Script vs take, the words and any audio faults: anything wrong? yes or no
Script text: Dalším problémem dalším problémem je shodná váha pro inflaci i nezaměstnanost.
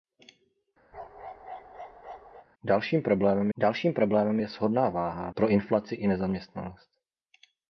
yes